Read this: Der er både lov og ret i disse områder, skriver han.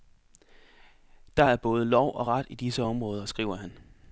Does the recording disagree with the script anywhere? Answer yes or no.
no